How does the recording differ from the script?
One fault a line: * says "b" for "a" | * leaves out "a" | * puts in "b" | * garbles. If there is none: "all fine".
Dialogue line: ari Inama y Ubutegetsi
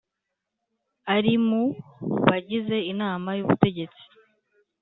* puts in "mu bagize"